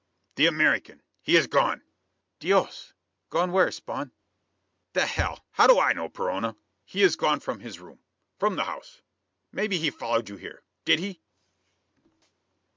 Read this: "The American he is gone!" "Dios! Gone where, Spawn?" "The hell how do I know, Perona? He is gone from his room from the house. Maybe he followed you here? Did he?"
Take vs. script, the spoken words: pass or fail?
pass